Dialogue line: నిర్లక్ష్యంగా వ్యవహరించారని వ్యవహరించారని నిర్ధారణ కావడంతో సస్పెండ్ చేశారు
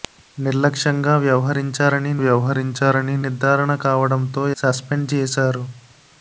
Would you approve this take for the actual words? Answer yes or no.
yes